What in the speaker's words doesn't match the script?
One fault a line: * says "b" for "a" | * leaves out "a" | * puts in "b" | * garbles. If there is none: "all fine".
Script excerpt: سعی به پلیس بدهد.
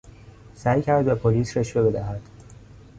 * puts in "کرد"
* puts in "رشوه"